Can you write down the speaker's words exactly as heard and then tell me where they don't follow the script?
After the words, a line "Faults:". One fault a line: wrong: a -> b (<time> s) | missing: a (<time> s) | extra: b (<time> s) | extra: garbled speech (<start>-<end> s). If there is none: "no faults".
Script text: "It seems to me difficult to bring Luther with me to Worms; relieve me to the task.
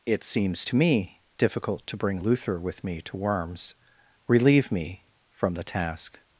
"It seems to me difficult to bring Luther with me to Worms; relieve me from the task.
Faults:
wrong: to -> from (5.3 s)